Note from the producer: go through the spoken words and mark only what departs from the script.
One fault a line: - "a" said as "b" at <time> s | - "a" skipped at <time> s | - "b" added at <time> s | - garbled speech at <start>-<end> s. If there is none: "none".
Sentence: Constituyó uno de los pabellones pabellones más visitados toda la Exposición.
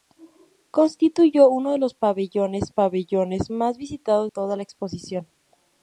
none